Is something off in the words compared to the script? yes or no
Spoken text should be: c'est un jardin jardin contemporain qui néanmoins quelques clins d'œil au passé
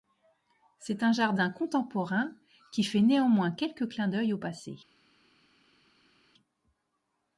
yes